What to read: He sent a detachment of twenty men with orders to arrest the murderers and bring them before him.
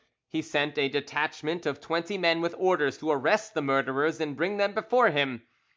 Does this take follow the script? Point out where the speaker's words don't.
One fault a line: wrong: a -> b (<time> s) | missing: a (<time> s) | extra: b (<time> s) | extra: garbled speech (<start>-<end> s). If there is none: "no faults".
no faults